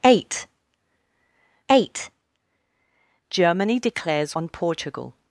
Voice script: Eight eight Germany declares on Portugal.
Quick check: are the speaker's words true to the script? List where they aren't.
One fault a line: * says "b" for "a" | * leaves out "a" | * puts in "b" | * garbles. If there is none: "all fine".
all fine